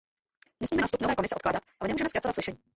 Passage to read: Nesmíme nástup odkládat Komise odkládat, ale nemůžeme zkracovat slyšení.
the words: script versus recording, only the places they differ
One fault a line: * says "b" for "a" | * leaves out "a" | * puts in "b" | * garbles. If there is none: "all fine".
* says "nové" for "odkládat"